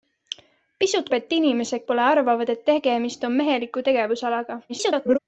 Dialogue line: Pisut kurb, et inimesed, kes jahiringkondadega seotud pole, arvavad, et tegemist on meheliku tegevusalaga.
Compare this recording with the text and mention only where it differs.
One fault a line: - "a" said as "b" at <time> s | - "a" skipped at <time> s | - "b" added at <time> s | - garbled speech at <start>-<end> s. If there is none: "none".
- "kurb" skipped at 1.1 s
- "kes jahiringkondadega seotud" skipped at 1.8 s
- garbled speech at 4.7-5.2 s